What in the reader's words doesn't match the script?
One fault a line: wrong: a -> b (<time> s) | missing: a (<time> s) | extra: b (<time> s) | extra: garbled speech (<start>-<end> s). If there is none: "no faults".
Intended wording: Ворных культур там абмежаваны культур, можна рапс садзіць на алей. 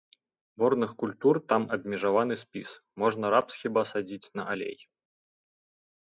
wrong: культур -> спіс (2.4 s)
extra: хіба (3.6 s)